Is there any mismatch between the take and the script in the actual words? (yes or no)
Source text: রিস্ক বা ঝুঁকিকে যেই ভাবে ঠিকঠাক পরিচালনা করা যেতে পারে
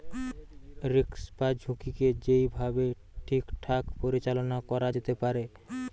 no